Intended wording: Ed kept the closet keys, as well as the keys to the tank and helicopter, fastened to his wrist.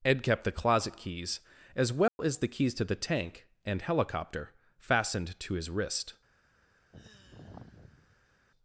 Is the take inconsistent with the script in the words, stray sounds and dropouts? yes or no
yes